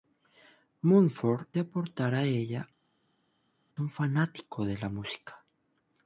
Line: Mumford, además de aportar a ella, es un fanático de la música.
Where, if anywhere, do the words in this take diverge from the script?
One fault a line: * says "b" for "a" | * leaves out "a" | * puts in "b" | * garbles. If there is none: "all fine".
* leaves out "además"
* leaves out "es"